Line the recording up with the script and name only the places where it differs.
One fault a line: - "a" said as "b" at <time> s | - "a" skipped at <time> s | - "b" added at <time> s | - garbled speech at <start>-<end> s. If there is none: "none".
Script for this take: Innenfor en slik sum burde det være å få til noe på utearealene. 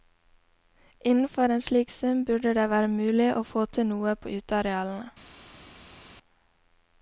- "mulig" added at 2.9 s